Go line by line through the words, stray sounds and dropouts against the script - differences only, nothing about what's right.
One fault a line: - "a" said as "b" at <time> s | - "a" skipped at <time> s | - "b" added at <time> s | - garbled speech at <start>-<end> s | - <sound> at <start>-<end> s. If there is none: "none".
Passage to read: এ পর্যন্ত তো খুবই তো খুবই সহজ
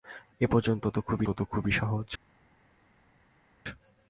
none